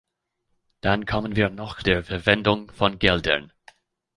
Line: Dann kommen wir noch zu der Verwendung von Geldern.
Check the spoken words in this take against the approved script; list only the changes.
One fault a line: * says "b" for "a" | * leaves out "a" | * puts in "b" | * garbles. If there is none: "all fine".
* leaves out "zu"